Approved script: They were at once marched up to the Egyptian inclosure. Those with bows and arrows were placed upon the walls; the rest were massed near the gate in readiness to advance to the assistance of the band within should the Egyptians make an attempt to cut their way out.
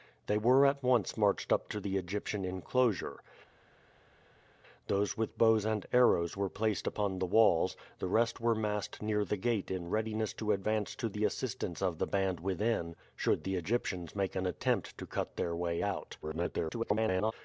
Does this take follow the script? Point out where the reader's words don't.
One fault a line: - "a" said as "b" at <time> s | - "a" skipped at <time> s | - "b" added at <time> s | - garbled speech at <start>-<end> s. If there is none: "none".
- garbled speech at 16.2-17.3 s